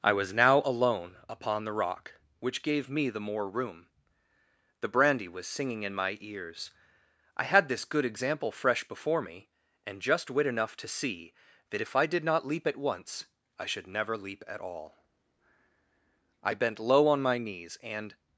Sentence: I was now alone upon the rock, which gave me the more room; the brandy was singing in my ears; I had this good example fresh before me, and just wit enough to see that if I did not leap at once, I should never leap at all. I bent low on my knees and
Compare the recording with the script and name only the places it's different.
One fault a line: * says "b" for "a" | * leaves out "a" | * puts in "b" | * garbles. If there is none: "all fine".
all fine